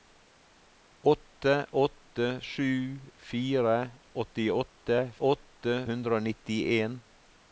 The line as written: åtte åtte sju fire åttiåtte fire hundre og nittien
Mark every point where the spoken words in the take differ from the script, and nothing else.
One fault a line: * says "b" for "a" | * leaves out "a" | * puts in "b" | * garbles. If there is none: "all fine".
* says "åtte" for "fire"